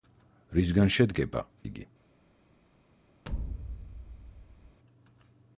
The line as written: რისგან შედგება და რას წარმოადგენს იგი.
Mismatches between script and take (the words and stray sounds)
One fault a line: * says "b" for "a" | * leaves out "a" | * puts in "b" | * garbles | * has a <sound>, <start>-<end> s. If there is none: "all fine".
* leaves out "და რას წარმოადგენს"
* has a thud, 3.2-4.8 s